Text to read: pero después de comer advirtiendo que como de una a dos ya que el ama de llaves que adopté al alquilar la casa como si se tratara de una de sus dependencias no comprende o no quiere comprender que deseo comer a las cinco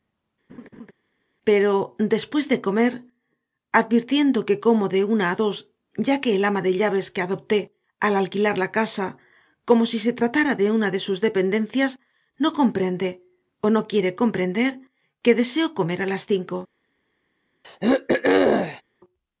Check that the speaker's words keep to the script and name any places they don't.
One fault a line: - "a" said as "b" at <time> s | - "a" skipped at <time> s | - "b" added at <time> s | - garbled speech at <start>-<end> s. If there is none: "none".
none